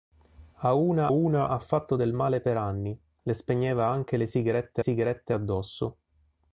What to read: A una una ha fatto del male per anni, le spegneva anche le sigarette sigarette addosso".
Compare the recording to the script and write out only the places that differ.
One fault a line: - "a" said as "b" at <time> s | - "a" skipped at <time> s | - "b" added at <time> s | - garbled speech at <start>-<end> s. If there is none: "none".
none